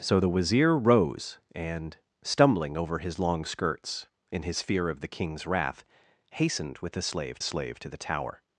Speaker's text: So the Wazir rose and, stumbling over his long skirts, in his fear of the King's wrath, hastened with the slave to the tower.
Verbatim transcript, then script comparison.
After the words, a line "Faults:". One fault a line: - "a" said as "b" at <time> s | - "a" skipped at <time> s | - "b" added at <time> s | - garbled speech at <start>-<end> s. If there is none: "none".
So the Wazir rose and, stumbling over his long skirts, in his fear of the King's wrath, hastened with the slave slave to the tower.
Faults:
- "slave" added at 7.4 s